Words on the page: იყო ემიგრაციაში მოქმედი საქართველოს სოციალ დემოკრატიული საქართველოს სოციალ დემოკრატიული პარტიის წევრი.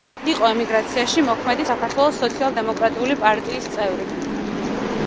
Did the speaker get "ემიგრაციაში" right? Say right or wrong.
right